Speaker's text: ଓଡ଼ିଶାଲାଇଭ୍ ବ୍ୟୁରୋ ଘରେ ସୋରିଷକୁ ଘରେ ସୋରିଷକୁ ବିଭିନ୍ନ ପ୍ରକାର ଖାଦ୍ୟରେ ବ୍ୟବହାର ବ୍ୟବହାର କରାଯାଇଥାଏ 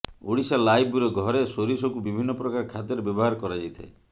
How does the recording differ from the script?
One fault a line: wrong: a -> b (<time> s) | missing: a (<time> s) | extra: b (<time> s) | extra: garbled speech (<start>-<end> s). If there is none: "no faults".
missing: ଘରେ ସୋରିଷକୁ (2.0 s)
missing: ବ୍ୟବହାର (3.4 s)